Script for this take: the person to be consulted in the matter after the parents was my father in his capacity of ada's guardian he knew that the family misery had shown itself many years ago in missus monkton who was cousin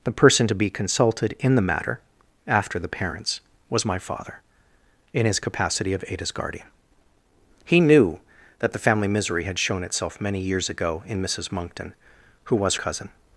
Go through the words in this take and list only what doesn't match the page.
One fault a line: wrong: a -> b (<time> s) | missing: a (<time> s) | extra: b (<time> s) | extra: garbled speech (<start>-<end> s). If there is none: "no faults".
no faults